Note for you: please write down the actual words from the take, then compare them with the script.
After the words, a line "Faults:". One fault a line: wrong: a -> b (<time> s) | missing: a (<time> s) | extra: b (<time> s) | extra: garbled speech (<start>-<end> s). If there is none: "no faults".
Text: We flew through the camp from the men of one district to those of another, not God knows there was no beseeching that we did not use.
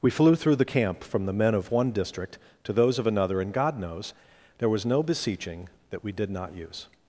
We flew through the camp from the men of one district to those of another, and God knows there was no beseeching that we did not use.
Faults:
wrong: not -> and (3.4 s)